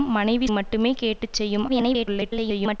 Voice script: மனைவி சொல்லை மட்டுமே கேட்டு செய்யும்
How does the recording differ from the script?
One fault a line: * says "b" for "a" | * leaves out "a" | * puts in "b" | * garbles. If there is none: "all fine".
* leaves out "சொல்லை"
* garbles